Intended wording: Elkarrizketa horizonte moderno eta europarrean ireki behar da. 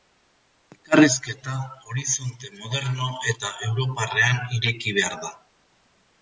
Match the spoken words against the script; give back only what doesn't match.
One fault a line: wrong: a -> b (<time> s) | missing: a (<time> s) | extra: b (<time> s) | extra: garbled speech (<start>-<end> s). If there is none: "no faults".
no faults